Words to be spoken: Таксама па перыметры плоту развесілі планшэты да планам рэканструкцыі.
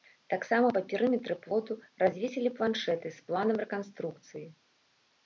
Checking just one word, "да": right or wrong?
wrong